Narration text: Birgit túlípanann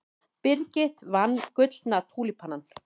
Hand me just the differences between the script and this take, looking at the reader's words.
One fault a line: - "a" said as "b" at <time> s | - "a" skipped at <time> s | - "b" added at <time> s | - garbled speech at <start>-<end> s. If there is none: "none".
- "vann Gullna" added at 1.2 s